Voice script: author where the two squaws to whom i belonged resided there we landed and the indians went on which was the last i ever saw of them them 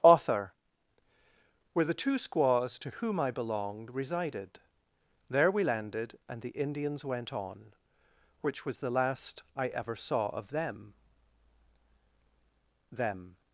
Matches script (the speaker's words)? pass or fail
pass